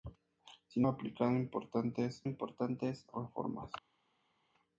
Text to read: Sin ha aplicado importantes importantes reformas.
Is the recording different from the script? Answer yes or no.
no